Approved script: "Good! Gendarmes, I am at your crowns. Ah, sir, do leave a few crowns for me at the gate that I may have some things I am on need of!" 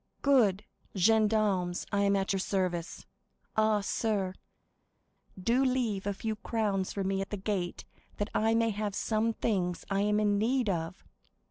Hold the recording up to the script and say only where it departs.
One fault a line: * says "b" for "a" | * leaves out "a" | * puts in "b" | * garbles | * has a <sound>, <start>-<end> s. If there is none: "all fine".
* says "service" for "crowns"
* says "in" for "on"